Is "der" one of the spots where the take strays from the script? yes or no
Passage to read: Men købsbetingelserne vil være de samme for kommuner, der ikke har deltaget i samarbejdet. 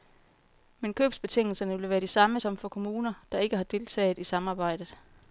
no